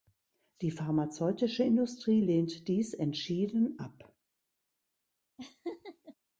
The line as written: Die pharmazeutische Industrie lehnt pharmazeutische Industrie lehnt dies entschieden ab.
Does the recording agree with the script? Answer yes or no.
no